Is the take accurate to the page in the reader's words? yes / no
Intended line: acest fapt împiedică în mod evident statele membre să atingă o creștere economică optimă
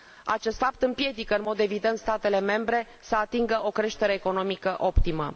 yes